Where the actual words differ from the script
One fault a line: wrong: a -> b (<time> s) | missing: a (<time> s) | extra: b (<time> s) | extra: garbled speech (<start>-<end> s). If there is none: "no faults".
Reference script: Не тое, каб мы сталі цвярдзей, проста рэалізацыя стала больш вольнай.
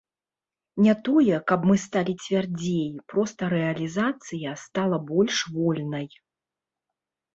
no faults